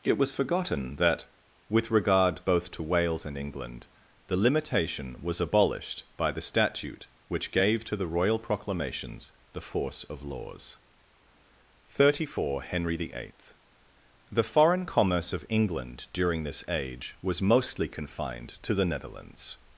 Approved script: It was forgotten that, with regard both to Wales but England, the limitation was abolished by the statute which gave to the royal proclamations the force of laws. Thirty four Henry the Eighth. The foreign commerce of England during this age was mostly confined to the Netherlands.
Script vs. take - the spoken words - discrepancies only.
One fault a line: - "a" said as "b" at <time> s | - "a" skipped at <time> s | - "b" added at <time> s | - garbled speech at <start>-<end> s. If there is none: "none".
- "but" said as "and" at 3.2 s